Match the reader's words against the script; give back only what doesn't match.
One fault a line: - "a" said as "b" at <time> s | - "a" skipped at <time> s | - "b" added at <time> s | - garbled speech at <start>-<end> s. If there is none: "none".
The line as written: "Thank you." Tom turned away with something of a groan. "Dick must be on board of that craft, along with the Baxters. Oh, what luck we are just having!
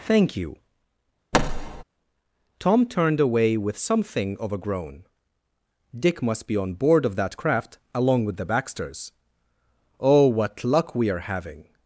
- "just" skipped at 11.3 s